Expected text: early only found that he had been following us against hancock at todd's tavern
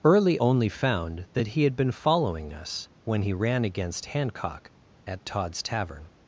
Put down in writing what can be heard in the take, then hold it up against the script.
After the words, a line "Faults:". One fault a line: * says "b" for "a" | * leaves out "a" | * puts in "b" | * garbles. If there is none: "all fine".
early only found that he had been following us when he ran against hancock at todd's tavern
Faults:
* puts in "when he ran"